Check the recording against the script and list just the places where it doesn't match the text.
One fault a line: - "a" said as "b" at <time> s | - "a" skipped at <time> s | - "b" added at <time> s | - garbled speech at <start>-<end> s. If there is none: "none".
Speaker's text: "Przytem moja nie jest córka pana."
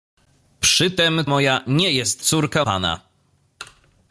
none